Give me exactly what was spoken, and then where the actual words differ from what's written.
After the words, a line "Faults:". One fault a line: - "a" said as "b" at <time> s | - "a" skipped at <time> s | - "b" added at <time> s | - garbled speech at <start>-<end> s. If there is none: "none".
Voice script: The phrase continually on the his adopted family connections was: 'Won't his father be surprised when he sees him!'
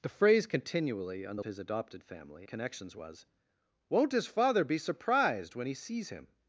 The phrase continually on the his adopted family connections was: 'Won't his father be surprised when he sees him!'
Faults:
none